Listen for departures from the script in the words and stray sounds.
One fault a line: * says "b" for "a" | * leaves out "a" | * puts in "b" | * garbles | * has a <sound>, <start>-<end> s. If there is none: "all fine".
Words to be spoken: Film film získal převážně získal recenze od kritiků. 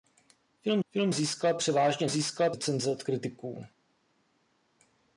all fine